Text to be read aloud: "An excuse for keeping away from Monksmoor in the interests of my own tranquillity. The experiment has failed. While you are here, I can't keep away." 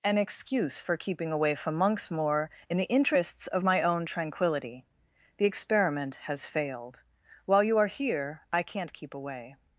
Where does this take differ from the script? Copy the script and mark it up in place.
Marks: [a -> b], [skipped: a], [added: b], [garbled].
"An excuse for keeping away from Monksmoor in the interests of my own tranquillity. The experiment has failed. While you are here, I can't keep away."